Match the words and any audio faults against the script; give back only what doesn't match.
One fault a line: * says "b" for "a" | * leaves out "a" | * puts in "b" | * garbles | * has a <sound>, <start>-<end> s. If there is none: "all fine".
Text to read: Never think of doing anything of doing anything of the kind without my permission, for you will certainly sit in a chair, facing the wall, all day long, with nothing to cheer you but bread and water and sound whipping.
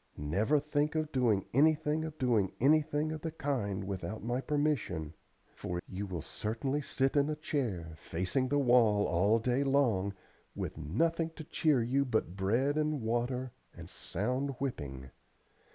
all fine